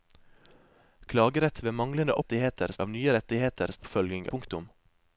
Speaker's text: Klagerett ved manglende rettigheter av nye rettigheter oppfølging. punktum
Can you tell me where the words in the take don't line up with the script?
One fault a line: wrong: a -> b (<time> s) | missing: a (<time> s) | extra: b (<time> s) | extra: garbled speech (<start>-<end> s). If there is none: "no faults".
no faults